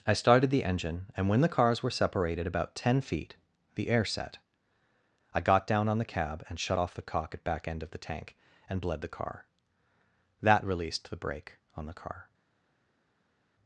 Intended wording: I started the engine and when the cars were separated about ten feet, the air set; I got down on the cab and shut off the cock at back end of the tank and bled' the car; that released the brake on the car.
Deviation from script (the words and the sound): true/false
false